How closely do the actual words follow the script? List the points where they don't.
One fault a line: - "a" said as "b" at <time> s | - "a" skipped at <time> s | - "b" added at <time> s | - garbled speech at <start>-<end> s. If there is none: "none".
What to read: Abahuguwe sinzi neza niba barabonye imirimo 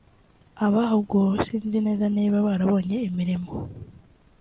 none